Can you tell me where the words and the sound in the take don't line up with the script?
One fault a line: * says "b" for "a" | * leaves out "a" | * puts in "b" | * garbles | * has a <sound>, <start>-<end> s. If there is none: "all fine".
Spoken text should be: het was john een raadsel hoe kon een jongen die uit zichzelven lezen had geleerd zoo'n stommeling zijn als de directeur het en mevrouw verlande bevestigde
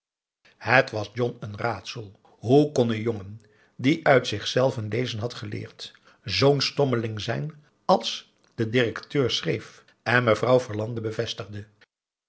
* says "schreef" for "het"